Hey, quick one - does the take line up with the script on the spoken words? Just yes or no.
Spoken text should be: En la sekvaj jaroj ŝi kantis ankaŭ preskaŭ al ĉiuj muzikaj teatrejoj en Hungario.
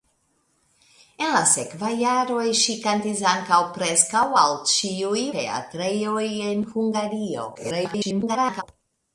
no